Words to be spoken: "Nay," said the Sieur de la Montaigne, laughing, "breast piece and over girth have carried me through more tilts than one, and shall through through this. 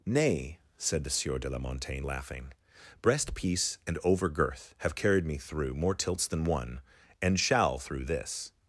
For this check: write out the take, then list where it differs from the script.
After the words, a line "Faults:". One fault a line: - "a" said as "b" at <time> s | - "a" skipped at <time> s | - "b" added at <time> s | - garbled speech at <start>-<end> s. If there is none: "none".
"Nay," said the Sieur de la Montaigne, laughing, "breast piece and over girth have carried me through more tilts than one, and shall through this.
Faults:
- "through" skipped at 8.1 s